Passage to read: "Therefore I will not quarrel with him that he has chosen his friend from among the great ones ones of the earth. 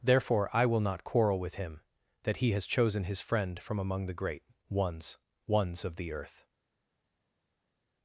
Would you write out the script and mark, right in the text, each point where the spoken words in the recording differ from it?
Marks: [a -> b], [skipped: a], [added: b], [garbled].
"Therefore I will not quarrel with him that he has chosen his friend from among the great ones ones of the earth.